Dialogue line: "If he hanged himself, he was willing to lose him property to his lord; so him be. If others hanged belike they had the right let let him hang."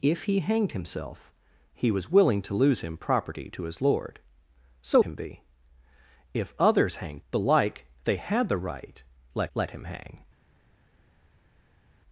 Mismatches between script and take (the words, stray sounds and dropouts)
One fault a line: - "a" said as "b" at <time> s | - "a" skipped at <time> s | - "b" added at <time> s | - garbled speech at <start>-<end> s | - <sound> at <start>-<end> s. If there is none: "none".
none